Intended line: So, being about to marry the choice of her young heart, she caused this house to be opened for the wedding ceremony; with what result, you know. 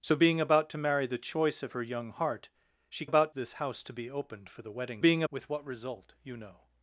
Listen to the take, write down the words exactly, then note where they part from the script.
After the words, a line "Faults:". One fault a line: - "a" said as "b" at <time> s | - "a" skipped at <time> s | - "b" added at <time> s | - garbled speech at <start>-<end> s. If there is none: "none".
So, being about to marry the choice of her young heart, she about this house to be opened for the wedding being; with what result, you know.
Faults:
- "caused" said as "about" at 3.0 s
- "ceremony" said as "being" at 5.0 s